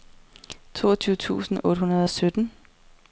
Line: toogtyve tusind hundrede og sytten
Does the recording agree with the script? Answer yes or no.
no